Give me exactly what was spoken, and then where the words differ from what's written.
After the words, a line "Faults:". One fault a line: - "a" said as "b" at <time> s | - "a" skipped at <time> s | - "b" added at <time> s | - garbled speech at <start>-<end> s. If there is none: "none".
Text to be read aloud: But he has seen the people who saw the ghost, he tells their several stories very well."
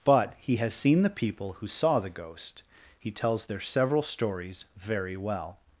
But he has seen the people who saw the ghost, he tells their several stories very well."
Faults:
none